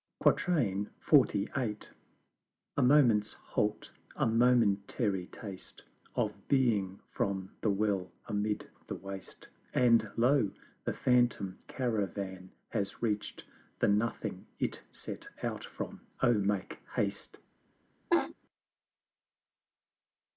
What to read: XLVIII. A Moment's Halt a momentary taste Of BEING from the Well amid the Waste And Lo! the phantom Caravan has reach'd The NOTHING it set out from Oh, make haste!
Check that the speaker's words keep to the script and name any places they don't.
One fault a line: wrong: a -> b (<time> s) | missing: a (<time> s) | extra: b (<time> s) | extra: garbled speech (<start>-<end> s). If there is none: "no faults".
no faults